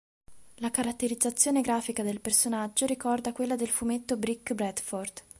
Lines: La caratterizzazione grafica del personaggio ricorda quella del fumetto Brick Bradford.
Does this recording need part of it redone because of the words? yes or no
no